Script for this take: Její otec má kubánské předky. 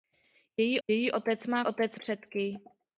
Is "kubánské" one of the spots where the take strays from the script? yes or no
yes